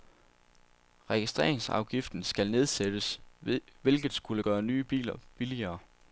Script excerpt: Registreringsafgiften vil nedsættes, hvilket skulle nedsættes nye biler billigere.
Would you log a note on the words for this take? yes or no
yes